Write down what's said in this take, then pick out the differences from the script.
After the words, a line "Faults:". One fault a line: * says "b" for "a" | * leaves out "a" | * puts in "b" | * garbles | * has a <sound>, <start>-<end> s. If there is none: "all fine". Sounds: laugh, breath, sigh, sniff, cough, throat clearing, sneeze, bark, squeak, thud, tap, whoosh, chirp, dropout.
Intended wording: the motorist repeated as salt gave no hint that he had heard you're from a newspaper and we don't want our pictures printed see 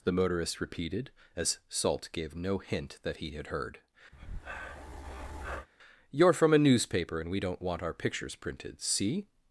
the motorist repeated as salt gave no hint that he had heard you're from a newspaper and we don't want our pictures printed see
Faults:
* has a breath, 4.1-5.7 s